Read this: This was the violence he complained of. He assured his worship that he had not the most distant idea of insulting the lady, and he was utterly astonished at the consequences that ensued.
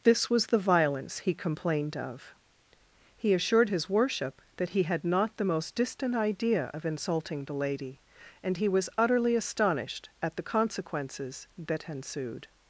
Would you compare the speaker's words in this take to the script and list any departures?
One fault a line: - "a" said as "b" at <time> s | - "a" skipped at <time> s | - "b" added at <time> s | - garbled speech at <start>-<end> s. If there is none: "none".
none